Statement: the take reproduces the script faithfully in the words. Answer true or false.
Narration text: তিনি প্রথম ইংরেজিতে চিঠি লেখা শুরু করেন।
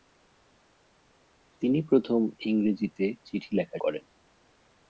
false